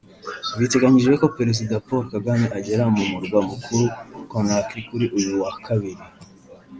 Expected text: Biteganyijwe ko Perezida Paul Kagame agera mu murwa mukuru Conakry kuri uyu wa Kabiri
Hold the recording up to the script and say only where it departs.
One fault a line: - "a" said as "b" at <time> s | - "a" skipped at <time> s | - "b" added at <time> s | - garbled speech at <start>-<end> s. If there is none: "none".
none